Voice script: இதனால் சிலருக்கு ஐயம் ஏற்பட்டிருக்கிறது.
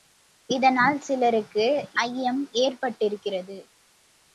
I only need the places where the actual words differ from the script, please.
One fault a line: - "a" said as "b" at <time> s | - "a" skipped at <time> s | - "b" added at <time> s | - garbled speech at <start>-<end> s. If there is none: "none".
none